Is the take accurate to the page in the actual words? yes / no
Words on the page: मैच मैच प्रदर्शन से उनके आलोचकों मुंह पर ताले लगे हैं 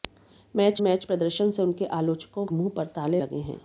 yes